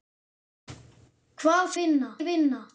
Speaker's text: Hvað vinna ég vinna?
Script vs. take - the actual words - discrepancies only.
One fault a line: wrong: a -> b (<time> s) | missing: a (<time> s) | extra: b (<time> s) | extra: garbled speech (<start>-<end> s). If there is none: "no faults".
no faults